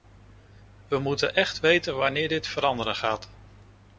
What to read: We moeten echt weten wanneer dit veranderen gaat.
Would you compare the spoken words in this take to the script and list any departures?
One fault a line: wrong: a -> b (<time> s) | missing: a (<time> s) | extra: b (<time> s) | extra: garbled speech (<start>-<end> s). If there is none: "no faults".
no faults